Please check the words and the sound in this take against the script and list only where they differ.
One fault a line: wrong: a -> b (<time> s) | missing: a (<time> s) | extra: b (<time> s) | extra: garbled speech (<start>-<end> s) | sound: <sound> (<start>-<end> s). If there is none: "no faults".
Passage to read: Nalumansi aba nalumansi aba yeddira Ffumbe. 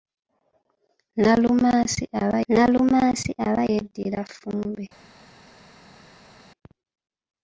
no faults